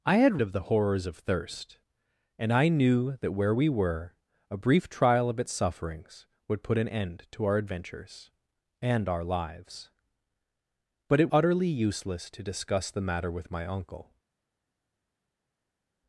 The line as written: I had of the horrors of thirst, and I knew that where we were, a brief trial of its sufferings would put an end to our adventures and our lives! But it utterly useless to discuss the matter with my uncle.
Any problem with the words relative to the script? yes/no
no